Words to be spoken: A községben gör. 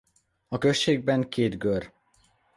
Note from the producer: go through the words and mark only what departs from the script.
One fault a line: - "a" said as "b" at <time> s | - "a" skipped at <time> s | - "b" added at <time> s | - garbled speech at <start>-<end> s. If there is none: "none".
- "két" added at 1.3 s